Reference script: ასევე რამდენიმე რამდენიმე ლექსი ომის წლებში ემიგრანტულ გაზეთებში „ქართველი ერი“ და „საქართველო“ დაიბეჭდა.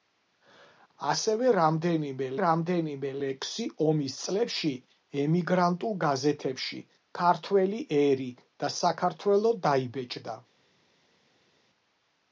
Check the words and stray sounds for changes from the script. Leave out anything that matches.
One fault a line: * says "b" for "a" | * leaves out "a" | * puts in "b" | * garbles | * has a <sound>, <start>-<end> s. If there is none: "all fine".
all fine